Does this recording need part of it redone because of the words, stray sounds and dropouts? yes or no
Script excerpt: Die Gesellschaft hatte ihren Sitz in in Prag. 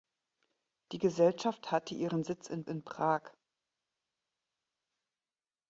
no